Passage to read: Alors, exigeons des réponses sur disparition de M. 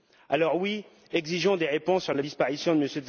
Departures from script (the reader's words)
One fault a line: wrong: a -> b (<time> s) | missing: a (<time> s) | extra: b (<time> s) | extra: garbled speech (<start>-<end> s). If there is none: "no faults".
extra: oui (0.6 s)
extra: la (2.1 s)